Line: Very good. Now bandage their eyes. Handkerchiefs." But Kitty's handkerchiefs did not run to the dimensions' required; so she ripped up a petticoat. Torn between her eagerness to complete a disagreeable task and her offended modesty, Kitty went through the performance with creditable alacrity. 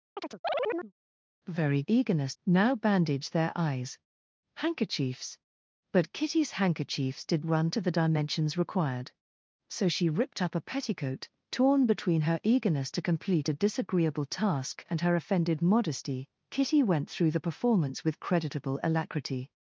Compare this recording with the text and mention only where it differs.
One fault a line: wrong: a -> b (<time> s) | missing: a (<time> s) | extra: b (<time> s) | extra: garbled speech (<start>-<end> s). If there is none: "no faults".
wrong: good -> eagerness (1.9 s)
missing: not (7.5 s)